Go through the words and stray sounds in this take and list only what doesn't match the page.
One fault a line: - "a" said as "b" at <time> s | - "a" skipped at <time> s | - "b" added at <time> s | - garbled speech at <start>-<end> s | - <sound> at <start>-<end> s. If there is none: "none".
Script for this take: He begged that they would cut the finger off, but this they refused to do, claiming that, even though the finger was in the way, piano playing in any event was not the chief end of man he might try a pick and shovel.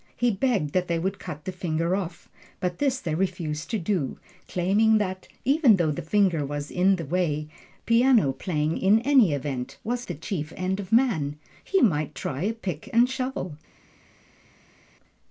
- "not" skipped at 10.1 s